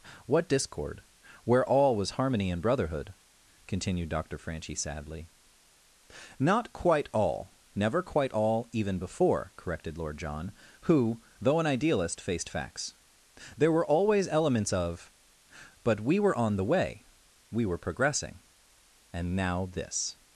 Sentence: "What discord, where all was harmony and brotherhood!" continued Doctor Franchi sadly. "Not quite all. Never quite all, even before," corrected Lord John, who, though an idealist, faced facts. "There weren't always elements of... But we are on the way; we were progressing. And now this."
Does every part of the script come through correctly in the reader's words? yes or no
no